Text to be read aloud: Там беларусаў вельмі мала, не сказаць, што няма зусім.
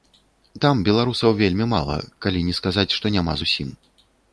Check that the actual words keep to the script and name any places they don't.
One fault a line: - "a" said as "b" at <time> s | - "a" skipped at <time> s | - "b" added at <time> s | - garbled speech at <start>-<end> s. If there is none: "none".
- "калі" added at 2.3 s